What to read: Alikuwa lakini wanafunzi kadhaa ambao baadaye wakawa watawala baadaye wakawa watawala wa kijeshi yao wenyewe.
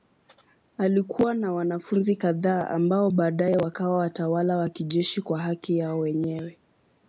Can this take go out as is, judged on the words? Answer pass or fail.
fail